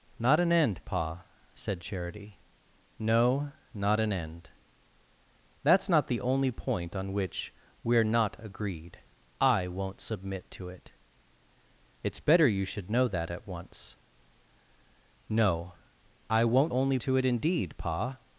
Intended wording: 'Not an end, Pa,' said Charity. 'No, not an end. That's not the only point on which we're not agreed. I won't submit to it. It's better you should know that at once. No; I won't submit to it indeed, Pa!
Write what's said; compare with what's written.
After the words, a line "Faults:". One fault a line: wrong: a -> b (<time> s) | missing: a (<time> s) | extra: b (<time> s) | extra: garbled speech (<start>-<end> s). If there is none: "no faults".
'Not an end, Pa,' said Charity. 'No, not an end. That's not the only point on which we're not agreed. I won't submit to it. It's better you should know that at once. No; I won't only to it indeed, Pa!
Faults:
wrong: submit -> only (16.7 s)